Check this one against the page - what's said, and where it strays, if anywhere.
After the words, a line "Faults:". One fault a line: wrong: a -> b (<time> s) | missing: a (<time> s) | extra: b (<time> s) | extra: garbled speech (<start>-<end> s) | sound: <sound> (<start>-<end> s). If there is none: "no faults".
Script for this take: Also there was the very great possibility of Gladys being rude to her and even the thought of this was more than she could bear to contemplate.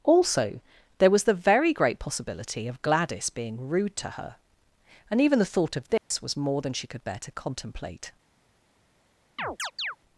Also there was the very great possibility of Gladys being rude to her and even the thought of this was more than she could bear to contemplate.
Faults:
sound: dropout (6.0-6.1 s)
sound: chirp (9.4-10.0 s)